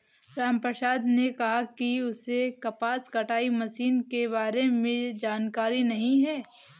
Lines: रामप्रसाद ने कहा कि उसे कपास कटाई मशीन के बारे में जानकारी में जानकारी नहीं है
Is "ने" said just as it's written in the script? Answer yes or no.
yes